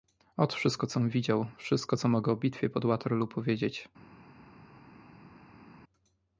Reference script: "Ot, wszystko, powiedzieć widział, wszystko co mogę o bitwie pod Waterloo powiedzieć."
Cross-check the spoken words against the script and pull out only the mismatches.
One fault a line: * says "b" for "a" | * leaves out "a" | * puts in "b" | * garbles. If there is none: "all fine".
* says "com" for "powiedzieć"